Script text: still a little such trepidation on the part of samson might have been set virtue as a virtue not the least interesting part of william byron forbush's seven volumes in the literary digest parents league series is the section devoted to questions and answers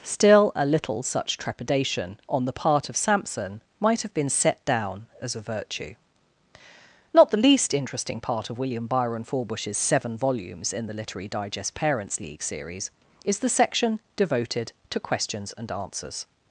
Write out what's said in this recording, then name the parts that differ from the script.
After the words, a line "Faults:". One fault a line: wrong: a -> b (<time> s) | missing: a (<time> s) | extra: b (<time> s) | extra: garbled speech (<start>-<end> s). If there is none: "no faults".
still a little such trepidation on the part of samson might have been set down as a virtue not the least interesting part of william byron forbush's seven volumes in the literary digest parents league series is the section devoted to questions and answers
Faults:
wrong: virtue -> down (4.7 s)